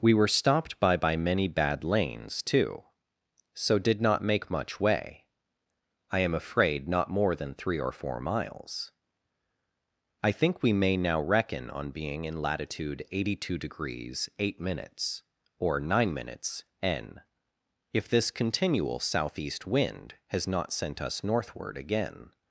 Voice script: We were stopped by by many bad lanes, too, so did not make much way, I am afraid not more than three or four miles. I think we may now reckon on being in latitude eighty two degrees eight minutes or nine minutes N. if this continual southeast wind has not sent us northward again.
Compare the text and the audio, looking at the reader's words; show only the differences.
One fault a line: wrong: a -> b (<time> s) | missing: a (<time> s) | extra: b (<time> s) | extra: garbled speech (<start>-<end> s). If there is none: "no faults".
no faults